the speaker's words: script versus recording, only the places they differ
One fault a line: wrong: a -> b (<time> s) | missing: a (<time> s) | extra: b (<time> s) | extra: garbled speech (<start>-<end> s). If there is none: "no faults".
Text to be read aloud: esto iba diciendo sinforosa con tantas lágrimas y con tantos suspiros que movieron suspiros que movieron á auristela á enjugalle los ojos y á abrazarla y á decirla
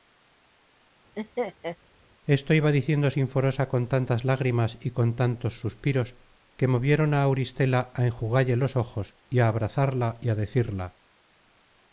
missing: suspiros que movieron (7.1 s)